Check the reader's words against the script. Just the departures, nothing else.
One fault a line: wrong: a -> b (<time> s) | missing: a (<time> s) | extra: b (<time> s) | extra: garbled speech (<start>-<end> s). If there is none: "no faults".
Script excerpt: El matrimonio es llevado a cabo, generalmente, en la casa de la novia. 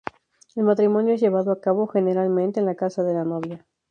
no faults